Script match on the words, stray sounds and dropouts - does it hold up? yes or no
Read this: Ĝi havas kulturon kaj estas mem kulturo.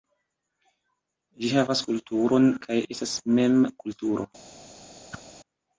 no